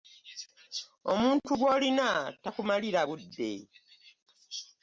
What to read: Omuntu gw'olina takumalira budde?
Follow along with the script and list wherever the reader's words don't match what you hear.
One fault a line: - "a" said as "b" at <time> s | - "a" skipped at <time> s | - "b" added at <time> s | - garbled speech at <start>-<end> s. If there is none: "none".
none